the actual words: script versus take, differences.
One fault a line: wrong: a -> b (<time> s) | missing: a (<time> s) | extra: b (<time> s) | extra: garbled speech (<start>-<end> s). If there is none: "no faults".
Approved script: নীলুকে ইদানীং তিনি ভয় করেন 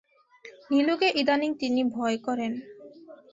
no faults